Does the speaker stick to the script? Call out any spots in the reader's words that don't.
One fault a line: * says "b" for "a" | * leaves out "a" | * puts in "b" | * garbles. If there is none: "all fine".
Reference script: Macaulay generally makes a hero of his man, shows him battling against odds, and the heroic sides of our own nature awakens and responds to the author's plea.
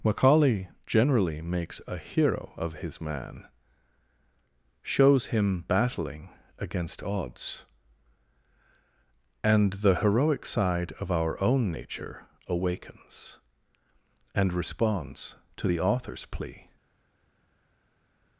* says "side" for "sides"